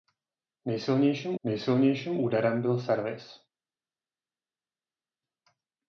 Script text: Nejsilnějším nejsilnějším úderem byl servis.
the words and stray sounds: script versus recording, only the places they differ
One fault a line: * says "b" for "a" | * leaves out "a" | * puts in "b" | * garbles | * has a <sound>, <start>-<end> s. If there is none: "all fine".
all fine